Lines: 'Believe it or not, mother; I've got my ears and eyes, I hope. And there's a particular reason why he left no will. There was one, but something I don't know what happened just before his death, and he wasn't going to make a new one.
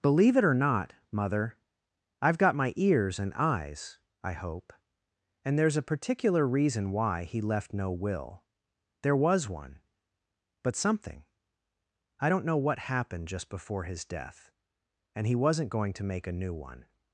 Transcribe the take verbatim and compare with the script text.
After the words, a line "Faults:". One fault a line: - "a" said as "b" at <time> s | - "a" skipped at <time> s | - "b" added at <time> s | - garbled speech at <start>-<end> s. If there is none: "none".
'Believe it or not, mother; I've got my ears and eyes, I hope. And there's a particular reason why he left no will. There was one, but something I don't know what happened just before his death, and he wasn't going to make a new one.
Faults:
none